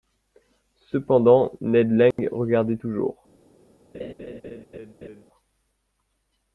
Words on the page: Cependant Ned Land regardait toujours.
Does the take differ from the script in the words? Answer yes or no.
no